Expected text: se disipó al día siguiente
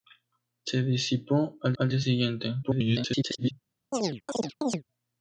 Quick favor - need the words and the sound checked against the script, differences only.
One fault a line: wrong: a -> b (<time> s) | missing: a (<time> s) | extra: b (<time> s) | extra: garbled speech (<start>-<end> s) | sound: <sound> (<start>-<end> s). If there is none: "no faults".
extra: al (1.8 s)
extra: garbled speech (2.6-3.5 s)
sound: chirp (3.9-4.8 s)